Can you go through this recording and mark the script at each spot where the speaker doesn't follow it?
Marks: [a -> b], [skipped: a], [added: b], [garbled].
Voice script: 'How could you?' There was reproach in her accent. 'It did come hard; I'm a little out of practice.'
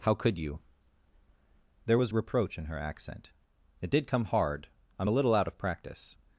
'How could you?' There was reproach in her accent. 'It did come hard; I'm a little out of practice.'